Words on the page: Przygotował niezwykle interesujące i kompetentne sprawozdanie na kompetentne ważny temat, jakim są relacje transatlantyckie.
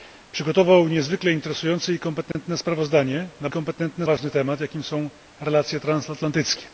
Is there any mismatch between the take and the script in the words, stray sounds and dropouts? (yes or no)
yes